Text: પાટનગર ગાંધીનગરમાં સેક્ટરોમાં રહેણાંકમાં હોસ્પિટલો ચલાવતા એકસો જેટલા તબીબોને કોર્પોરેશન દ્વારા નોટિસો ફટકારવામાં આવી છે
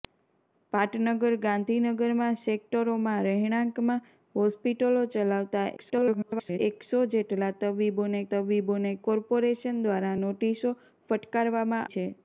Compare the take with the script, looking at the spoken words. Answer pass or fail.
fail